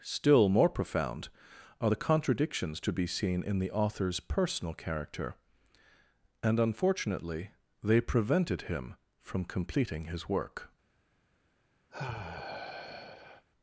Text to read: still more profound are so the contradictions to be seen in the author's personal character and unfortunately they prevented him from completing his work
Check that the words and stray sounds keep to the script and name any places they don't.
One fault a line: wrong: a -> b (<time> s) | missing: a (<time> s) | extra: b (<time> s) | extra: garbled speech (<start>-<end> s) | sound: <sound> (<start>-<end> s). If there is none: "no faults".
missing: so (1.9 s)
sound: sigh (11.9-13.4 s)